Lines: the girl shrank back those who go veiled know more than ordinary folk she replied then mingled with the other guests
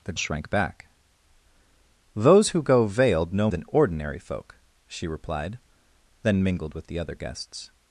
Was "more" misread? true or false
true